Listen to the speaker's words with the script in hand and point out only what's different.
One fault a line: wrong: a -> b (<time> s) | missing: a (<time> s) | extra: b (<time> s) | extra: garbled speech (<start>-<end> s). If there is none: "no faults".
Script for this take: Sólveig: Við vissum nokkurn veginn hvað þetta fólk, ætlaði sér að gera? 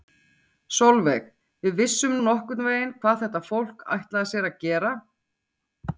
no faults